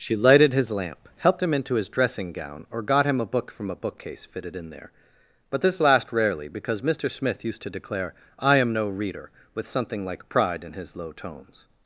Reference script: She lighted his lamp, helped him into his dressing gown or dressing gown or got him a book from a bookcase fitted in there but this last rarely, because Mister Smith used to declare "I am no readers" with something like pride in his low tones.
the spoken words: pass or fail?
fail